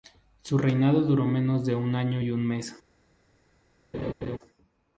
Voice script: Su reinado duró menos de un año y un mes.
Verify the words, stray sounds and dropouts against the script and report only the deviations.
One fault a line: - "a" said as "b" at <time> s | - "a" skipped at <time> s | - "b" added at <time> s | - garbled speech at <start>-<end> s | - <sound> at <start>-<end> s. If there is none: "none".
- laugh at 3.9-4.4 s